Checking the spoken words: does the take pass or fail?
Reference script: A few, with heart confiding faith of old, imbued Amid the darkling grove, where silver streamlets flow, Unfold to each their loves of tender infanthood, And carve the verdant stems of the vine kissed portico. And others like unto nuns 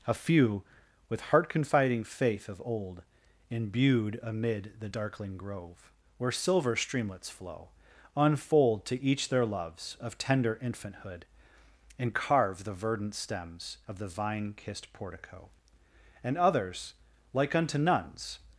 pass